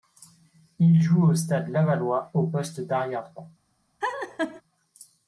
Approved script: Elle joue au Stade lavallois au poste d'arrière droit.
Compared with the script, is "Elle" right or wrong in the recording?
wrong